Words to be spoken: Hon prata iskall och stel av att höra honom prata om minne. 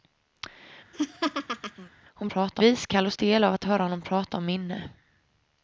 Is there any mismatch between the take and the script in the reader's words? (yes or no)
no